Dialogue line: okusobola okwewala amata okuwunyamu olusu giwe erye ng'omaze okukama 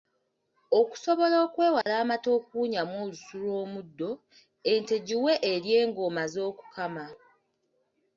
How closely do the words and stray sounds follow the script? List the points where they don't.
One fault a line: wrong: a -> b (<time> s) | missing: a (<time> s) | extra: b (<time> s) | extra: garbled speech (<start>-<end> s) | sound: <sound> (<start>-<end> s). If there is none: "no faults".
sound: dropout (1.8-1.9 s)
extra: lw'omuddo ente (3.4 s)